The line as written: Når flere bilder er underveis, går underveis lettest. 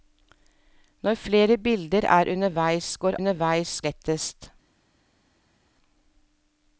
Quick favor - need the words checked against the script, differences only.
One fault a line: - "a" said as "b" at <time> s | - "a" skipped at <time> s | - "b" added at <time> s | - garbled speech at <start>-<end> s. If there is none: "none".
none